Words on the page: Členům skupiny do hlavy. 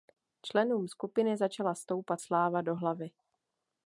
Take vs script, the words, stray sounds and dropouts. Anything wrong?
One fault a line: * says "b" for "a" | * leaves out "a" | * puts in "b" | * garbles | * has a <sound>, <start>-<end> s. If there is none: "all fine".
* puts in "začala stoupat sláva"